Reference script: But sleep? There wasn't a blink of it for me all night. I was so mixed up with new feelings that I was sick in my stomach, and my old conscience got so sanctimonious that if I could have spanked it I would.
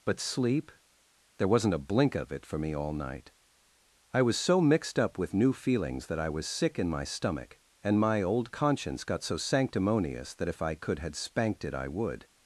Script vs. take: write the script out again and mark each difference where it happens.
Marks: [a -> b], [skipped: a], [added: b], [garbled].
But sleep? There wasn't a blink of it for me all night. I was so mixed up with new feelings that I was sick in my stomach, and my old conscience got so sanctimonious that if I could [have -> had] spanked it I would.